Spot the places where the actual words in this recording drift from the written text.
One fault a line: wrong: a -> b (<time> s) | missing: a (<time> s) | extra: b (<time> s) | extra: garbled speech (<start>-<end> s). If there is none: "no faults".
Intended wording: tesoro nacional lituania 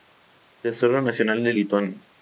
extra: de (1.4 s)